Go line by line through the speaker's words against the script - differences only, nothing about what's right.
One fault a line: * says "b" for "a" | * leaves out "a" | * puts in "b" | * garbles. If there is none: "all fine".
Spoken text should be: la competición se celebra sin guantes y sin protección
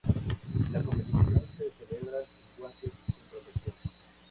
all fine